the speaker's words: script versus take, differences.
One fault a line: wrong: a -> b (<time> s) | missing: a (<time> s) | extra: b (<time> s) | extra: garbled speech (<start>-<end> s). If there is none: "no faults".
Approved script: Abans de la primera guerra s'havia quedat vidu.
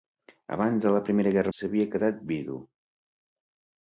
no faults